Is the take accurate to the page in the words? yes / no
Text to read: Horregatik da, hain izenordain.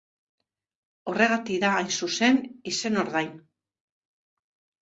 no